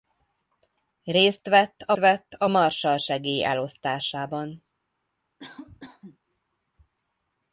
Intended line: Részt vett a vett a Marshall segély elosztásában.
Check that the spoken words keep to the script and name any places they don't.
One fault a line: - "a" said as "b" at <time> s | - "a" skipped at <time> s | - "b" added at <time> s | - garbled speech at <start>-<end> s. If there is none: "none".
none